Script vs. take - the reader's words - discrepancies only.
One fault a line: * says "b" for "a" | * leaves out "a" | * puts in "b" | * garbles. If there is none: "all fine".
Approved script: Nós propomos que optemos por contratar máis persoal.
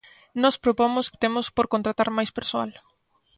* leaves out "que"